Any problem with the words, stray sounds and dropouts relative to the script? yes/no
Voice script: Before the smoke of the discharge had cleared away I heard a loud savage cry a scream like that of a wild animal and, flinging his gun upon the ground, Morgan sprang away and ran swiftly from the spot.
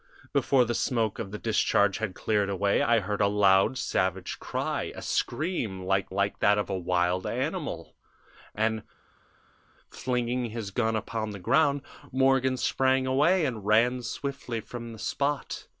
yes